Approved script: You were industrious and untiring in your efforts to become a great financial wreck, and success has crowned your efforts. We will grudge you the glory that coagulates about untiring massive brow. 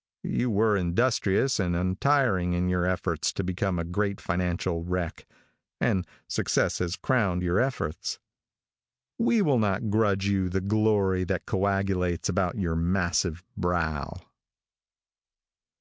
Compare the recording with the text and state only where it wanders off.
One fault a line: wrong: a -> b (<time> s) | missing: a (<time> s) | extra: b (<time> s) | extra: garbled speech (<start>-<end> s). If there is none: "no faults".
extra: not (9.6 s)
wrong: untiring -> your (12.6 s)